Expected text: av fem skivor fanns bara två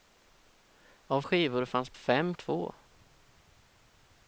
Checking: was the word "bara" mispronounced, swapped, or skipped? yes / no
yes